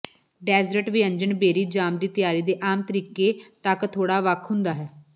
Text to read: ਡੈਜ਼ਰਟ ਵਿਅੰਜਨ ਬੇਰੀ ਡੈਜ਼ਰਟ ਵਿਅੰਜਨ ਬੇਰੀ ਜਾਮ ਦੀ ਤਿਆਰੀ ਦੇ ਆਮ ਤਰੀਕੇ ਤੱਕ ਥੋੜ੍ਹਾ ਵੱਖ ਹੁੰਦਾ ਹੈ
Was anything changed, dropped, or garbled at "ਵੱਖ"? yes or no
no